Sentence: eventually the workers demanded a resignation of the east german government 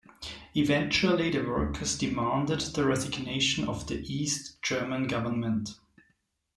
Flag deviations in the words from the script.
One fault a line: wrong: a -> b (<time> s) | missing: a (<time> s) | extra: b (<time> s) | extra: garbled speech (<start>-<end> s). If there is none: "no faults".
wrong: a -> the (2.6 s)